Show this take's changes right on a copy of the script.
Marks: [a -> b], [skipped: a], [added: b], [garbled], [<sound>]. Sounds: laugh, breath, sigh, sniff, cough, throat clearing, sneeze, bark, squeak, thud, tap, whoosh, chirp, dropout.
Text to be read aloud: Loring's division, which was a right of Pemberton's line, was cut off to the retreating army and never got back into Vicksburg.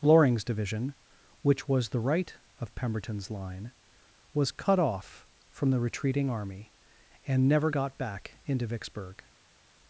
Loring's division, which was [a -> the] right of Pemberton's line, was cut off [to -> from] the retreating army and never got back into Vicksburg.